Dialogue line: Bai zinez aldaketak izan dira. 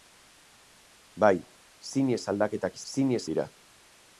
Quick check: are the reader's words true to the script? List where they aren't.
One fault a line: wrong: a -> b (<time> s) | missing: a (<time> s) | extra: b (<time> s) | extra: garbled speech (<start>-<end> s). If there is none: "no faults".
wrong: izan -> zinez (2.9 s)